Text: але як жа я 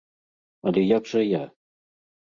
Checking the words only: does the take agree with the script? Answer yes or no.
yes